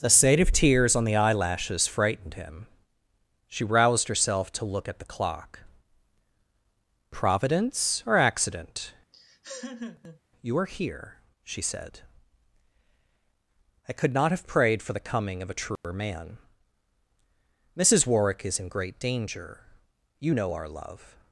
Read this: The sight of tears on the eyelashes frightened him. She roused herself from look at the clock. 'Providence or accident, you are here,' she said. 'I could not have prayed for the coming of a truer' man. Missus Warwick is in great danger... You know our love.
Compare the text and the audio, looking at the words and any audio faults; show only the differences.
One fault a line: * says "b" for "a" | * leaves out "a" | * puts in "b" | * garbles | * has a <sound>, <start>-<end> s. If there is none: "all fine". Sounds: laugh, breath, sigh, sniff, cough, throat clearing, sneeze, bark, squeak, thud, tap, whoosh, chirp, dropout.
* says "to" for "from"
* has a laugh, 9.1-10.2 s
* has a dropout, 15.8-15.8 s